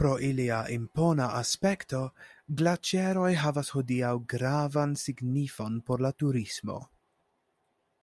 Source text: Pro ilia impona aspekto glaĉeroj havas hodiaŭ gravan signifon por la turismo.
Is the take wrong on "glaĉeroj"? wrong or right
right